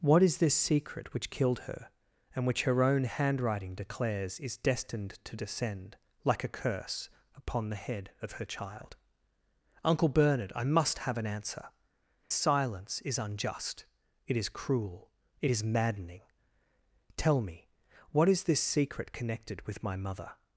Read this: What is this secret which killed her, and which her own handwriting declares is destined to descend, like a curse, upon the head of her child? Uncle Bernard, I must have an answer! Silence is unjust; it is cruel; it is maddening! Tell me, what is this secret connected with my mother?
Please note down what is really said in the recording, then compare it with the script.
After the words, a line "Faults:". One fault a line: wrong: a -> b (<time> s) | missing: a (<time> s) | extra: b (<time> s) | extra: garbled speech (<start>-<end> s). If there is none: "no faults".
What is this secret which killed her, and which her own handwriting declares is destined to descend, like a curse, upon the head of her child? Uncle Bernard, I must have an answer! Silence is unjust; it is cruel; it is maddening! Tell me, what is this secret connected with my mother?
Faults:
no faults